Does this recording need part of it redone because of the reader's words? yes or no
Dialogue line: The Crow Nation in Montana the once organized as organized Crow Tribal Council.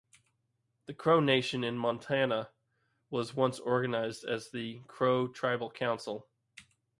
yes